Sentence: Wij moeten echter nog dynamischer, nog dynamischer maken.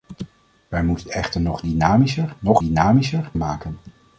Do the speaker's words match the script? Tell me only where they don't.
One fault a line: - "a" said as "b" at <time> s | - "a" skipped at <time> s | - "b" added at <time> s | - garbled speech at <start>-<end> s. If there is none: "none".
none